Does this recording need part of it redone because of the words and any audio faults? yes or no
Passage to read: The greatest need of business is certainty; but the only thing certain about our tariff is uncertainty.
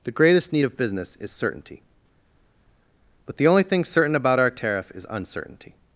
no